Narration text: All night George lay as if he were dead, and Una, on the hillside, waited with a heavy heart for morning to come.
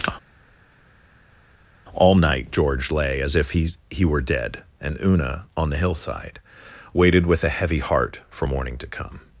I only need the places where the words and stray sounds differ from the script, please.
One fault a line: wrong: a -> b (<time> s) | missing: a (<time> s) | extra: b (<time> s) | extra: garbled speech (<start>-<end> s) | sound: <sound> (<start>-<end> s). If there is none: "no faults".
extra: he (3.9 s)